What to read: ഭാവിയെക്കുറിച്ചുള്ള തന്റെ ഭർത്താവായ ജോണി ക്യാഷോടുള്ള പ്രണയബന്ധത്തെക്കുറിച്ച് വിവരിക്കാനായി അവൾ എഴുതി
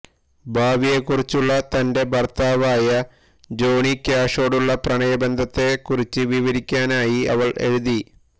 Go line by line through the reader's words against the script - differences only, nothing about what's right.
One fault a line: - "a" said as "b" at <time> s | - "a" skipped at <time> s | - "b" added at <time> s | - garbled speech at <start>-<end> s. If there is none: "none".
none